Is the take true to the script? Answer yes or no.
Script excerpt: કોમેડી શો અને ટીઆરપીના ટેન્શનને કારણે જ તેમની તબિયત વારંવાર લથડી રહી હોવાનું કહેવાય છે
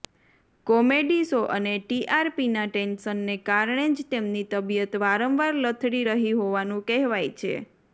yes